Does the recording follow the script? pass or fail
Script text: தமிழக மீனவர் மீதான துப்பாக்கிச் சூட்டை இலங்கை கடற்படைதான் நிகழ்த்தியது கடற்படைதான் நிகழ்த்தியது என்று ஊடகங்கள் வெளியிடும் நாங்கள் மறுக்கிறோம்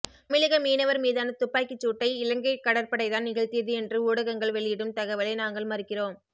fail